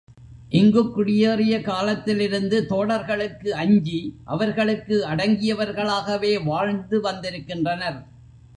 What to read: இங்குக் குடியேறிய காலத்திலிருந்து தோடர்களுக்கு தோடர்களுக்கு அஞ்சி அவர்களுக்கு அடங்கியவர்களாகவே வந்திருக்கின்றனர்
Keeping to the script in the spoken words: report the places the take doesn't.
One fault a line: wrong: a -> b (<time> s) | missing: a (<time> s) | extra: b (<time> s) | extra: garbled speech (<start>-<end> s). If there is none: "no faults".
missing: தோடர்களுக்கு (3.5 s)
extra: வாழ்ந்து (6.4 s)